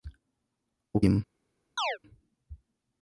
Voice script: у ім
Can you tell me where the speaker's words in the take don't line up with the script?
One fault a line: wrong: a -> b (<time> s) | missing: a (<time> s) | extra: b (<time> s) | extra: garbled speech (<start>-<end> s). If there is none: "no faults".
no faults